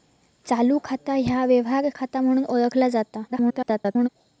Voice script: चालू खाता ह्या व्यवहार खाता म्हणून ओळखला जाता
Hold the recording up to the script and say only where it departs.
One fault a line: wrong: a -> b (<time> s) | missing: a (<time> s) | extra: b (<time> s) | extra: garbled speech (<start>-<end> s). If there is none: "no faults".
extra: garbled speech (3.3-4.1 s)